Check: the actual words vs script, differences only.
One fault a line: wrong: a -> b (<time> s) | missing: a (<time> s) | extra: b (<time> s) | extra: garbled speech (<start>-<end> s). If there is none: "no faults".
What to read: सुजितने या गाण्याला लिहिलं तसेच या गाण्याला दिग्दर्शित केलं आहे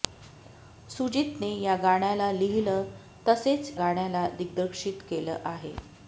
missing: या (3.7 s)